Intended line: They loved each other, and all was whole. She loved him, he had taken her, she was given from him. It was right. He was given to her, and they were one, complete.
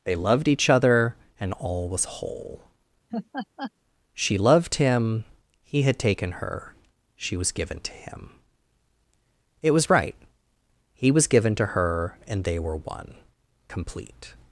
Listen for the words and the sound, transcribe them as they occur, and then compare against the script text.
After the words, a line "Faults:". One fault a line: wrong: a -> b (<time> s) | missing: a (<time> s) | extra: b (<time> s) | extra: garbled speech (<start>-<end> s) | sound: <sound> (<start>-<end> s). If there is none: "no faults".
They loved each other, and all was whole. She loved him, he had taken her, she was given to him. It was right. He was given to her, and they were one, complete.
Faults:
sound: laugh (3.1-3.7 s)
wrong: from -> to (7.8 s)